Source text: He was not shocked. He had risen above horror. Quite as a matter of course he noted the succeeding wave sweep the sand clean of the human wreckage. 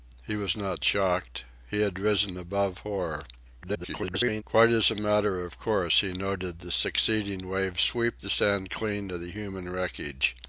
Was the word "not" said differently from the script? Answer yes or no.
no